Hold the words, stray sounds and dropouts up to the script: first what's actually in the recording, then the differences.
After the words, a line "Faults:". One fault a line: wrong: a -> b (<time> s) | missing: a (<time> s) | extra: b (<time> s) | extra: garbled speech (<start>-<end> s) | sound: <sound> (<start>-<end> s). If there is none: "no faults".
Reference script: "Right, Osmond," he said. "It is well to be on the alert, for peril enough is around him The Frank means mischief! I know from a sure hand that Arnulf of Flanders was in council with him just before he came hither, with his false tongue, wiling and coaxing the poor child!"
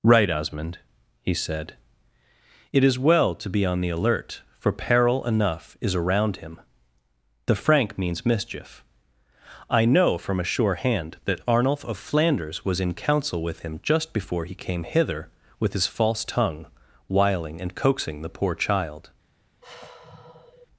"Right, Osmond," he said. "It is well to be on the alert, for peril enough is around him The Frank means mischief! I know from a sure hand that Arnulf of Flanders was in council with him just before he came hither, with his false tongue, wiling and coaxing the poor child!"
Faults:
sound: sigh (19.6-20.7 s)